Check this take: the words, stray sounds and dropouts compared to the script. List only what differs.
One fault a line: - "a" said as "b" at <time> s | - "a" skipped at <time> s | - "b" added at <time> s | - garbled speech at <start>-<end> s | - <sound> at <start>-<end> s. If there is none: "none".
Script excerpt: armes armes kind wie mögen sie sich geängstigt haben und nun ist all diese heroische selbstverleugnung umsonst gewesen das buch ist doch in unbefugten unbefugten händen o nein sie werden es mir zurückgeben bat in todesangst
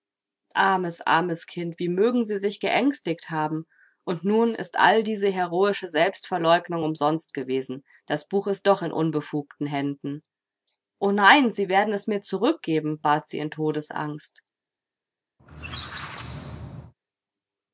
- "unbefugten" skipped at 9.7 s
- "sie" added at 13.3 s
- squeak at 15.4-16.9 s